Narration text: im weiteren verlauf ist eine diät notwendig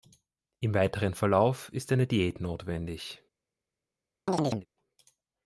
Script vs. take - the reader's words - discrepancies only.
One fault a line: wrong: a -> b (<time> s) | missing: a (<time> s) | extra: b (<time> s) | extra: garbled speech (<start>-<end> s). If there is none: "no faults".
no faults